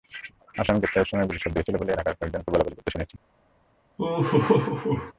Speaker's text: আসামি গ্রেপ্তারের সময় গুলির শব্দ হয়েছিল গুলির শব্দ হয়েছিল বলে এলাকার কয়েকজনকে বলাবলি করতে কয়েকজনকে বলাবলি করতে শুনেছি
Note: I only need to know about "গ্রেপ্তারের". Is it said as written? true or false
true